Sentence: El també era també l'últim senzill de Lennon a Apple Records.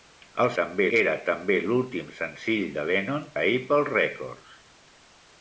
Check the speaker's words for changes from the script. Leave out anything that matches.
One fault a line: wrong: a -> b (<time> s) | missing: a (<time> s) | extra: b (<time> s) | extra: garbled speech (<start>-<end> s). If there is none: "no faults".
no faults